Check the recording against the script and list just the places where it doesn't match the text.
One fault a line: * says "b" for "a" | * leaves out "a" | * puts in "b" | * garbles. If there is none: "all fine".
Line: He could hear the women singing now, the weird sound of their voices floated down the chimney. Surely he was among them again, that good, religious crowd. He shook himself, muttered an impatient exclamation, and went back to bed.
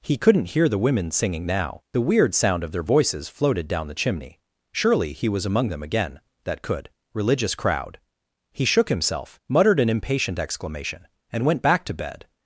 * says "couldn't" for "could"
* says "could" for "good"